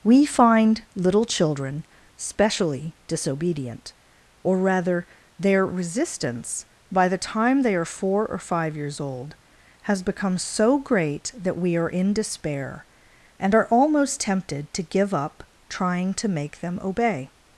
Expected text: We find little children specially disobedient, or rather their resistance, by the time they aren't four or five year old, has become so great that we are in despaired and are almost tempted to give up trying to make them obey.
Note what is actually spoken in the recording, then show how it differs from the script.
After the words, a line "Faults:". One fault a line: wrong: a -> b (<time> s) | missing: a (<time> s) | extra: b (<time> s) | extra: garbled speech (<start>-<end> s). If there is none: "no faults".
We find little children specially disobedient, or rather their resistance, by the time they are four or five years old, has become so great that we are in despair and are almost tempted to give up trying to make them obey.
Faults:
wrong: aren't -> are (7.7 s)
wrong: year -> years (8.8 s)
wrong: despaired -> despair (12.1 s)